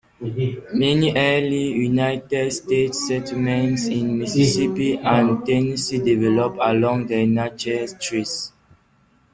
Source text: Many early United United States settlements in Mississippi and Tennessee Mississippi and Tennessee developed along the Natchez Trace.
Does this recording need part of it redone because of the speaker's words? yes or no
yes